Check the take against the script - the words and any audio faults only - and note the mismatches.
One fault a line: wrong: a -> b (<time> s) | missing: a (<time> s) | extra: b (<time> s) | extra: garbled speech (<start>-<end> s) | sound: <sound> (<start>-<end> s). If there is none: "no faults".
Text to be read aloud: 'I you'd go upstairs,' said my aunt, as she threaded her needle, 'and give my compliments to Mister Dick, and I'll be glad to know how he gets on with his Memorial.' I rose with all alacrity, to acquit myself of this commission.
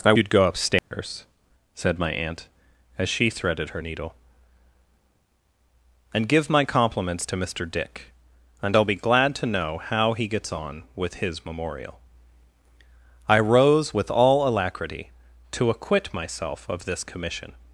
sound: dropout (0.8-0.9 s)